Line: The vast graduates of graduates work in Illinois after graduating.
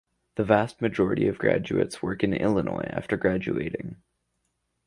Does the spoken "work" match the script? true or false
true